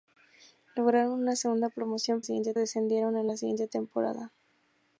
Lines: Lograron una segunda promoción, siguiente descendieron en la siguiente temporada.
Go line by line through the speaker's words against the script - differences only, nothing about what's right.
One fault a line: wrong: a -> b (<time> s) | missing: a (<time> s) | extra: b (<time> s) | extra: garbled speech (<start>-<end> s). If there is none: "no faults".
no faults